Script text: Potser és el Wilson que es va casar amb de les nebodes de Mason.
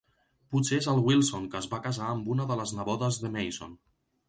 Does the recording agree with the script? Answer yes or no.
no